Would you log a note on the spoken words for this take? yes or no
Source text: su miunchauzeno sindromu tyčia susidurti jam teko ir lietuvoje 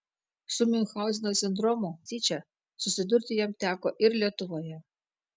no